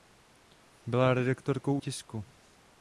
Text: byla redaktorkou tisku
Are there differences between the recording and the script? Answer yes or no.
no